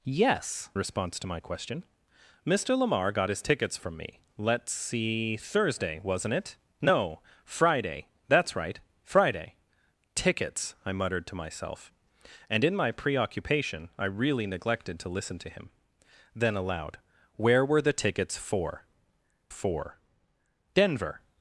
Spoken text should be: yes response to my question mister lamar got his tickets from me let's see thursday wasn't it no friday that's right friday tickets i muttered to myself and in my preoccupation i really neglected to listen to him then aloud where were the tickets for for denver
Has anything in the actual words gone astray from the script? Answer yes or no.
no